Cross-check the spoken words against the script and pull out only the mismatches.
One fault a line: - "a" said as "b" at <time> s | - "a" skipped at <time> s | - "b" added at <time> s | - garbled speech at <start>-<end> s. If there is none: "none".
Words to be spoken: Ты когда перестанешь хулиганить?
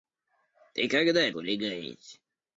- "перестанешь" skipped at 1.3 s